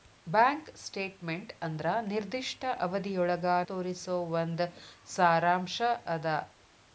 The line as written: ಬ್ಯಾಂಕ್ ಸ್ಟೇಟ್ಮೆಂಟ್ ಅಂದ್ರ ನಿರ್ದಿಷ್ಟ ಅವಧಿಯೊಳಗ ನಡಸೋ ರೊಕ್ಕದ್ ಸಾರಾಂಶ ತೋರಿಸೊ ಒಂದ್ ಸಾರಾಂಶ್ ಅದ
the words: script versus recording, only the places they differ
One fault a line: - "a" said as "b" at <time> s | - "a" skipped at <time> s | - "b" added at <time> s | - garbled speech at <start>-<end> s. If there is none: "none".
- "ನಡಸೋ ರೊಕ್ಕದ್ ಸಾರಾಂಶ" skipped at 3.5 s